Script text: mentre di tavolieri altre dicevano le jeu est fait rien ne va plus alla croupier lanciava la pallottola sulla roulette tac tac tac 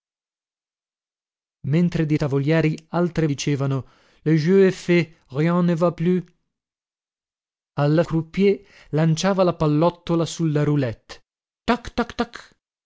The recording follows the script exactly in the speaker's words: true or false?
true